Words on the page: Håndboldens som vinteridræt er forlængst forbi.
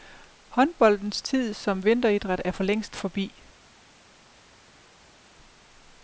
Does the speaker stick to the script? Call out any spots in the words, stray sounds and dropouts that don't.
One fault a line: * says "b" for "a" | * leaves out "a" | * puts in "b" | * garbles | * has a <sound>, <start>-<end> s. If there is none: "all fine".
* puts in "tid"